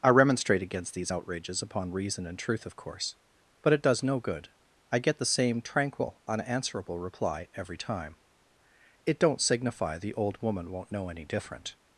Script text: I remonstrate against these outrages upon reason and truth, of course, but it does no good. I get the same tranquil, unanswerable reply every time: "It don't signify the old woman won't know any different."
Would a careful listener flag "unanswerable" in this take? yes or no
no